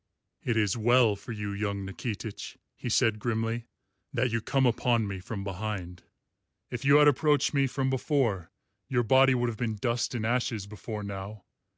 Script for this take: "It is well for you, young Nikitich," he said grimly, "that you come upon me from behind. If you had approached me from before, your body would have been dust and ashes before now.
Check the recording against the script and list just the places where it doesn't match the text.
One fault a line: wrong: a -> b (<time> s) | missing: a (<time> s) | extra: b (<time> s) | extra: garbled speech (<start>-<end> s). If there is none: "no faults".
no faults